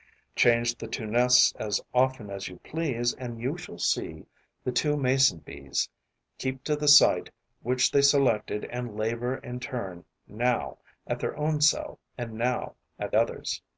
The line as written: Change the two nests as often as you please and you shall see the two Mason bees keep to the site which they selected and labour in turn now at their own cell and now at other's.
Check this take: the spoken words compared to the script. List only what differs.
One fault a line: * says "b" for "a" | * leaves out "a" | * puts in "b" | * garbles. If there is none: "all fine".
all fine